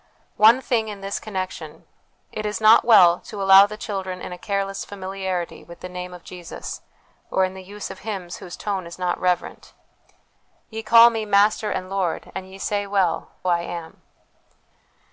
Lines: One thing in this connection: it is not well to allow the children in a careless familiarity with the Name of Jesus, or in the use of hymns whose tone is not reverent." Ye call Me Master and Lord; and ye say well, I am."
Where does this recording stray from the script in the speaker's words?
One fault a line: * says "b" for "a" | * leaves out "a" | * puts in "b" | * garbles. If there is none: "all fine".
all fine